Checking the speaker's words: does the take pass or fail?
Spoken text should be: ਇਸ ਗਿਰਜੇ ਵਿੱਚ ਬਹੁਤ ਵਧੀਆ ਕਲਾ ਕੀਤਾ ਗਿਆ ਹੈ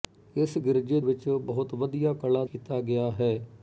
pass